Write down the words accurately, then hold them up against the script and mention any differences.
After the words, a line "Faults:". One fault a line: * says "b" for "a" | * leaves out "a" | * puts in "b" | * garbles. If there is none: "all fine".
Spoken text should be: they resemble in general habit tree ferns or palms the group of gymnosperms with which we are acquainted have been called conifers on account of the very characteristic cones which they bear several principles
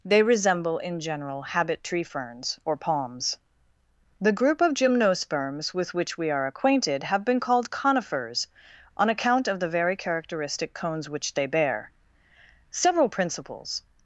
they resemble in general habit tree ferns or palms the group of gymnosperms with which we are acquainted have been called conifers on account of the very characteristic cones which they bear several principles
Faults:
all fine